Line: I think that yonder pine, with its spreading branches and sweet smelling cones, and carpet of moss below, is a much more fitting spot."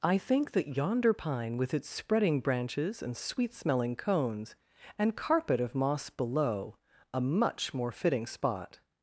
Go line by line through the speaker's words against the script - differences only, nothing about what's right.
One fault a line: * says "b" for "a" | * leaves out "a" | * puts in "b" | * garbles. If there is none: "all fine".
* leaves out "is"